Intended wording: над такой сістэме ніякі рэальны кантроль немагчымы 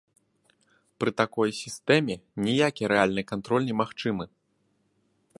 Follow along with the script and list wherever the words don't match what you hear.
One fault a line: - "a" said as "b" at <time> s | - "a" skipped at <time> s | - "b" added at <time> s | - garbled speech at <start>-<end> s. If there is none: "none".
- "над" said as "пры" at 1.0 s